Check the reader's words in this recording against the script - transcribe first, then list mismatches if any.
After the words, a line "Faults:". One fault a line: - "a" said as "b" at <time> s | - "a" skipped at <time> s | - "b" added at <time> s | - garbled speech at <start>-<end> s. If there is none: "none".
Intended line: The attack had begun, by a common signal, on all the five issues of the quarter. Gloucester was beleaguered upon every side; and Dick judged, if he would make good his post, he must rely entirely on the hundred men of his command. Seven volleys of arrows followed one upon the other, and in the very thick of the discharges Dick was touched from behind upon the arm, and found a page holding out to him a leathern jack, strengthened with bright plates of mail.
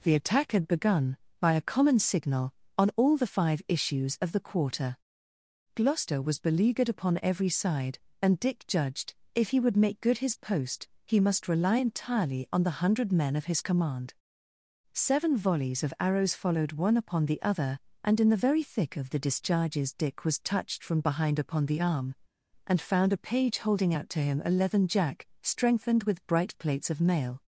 The attack had begun, by a common signal, on all the five issues of the quarter. Gloucester was beleaguered upon every side; and Dick judged, if he would make good his post, he must rely entirely on the hundred men of his command. Seven volleys of arrows followed one upon the other, and in the very thick of the discharges Dick was touched from behind upon the arm, and found a page holding out to him a leathern jack, strengthened with bright plates of mail.
Faults:
none